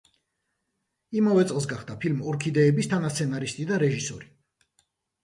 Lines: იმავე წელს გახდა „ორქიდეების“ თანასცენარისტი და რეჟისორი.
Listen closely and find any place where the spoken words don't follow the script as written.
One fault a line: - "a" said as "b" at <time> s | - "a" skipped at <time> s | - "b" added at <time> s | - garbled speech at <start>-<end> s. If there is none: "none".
- "ფილმ" added at 2.0 s